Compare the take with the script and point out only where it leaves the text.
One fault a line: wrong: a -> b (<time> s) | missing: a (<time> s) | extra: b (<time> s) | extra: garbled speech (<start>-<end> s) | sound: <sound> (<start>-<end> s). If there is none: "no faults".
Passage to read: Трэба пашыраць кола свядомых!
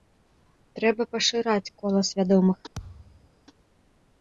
sound: thud (2.8-3.3 s)